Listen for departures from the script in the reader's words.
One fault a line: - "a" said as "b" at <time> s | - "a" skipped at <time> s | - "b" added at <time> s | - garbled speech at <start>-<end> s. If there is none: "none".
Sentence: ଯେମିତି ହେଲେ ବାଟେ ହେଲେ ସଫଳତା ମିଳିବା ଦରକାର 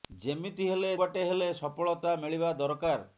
none